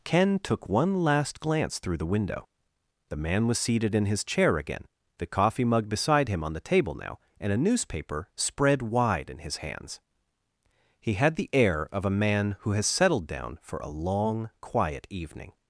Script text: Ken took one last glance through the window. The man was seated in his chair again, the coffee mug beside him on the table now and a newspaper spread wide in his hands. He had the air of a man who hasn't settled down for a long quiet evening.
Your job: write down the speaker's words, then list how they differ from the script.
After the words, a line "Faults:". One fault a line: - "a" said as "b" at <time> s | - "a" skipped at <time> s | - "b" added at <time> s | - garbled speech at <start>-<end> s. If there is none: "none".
Ken took one last glance through the window. The man was seated in his chair again, the coffee mug beside him on the table now and a newspaper spread wide in his hands. He had the air of a man who has settled down for a long quiet evening.
Faults:
- "hasn't" said as "has" at 12.7 s